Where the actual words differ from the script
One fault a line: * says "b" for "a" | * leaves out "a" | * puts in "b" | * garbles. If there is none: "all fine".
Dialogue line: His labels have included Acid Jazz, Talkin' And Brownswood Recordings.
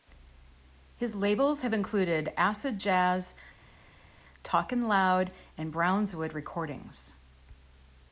* puts in "Loud"